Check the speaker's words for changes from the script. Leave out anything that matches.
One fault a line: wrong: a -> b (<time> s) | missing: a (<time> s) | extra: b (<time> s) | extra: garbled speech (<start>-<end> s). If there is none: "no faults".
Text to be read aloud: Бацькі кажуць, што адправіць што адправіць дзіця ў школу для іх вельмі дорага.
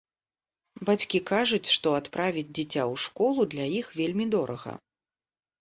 missing: што адправіць (2.5 s)